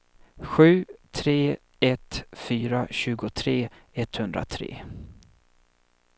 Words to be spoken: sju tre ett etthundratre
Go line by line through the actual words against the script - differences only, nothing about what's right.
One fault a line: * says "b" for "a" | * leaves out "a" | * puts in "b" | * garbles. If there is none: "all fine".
* puts in "fyra tjugotre"